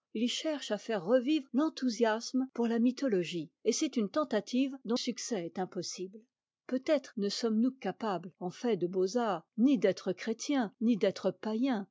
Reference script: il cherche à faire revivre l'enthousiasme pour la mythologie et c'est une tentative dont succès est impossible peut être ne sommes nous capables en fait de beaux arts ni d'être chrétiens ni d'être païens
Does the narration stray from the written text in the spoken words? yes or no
no